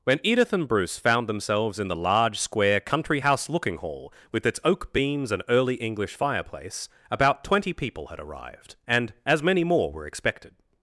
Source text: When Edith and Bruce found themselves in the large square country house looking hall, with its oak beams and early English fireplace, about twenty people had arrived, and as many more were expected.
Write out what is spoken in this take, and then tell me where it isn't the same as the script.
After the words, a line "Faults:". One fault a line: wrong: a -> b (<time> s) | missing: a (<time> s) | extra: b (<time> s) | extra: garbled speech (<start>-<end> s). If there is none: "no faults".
When Edith and Bruce found themselves in the large square country house looking hall, with its oak beams and early English fireplace, about twenty people had arrived, and as many more were expected.
Faults:
no faults